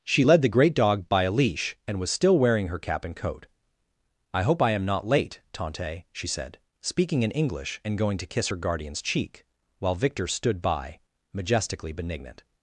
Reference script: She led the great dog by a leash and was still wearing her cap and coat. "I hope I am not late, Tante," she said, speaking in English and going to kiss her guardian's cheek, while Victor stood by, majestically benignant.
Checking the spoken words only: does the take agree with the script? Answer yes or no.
yes